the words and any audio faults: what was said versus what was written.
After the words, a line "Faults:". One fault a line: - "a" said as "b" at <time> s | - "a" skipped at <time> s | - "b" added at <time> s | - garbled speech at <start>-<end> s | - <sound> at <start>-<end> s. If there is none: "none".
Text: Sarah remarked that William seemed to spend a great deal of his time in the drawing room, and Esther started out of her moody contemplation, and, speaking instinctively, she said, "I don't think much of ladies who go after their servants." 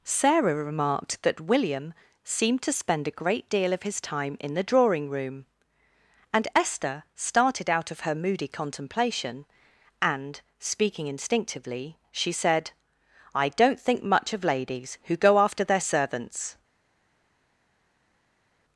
Sarah remarked that William seemed to spend a great deal of his time in the drawing room, and Esther started out of her moody contemplation, and, speaking instinctively, she said, "I don't think much of ladies who go after their servants."
Faults:
none